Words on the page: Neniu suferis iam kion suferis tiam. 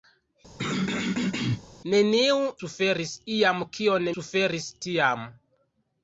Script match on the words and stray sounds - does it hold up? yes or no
no